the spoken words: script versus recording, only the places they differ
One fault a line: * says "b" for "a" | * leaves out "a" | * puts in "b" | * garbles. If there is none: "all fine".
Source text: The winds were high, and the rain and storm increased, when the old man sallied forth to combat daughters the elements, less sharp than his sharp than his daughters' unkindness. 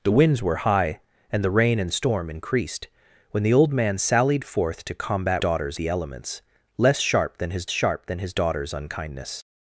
all fine